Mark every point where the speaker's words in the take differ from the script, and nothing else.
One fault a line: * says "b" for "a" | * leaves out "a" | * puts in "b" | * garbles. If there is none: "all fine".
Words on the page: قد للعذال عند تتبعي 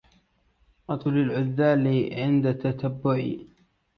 all fine